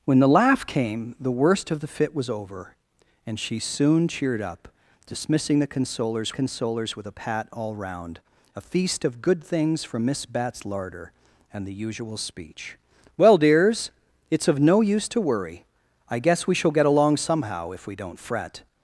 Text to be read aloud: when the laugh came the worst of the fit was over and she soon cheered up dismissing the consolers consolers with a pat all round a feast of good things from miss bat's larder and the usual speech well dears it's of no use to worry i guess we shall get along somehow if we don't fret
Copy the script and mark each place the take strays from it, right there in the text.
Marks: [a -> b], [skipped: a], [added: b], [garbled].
when the laugh came the worst of the fit was over and she soon cheered up dismissing the consolers consolers with a pat all round a feast of good things from miss bat's larder and the usual speech well dears it's of no use to worry i guess we shall get along somehow if we don't fret